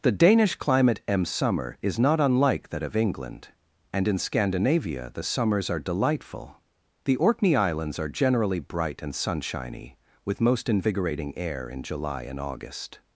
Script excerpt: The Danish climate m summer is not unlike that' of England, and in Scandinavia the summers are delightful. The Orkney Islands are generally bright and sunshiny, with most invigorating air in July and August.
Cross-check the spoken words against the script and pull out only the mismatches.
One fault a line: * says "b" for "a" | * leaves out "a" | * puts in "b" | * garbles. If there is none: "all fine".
all fine